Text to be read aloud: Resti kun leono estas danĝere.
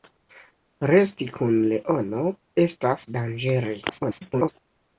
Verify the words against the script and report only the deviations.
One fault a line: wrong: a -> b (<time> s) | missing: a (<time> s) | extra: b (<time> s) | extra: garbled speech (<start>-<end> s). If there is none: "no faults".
extra: garbled speech (3.9-4.5 s)